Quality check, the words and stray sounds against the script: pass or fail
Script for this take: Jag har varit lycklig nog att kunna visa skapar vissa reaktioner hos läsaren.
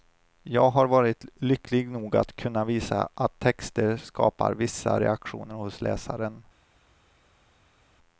fail